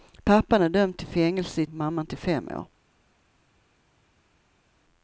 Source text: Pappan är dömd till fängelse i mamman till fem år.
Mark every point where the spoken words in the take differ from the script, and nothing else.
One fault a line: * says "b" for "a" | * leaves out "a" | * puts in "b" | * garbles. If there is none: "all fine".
all fine